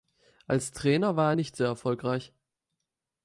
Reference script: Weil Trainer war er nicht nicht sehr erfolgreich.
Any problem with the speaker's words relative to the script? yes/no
yes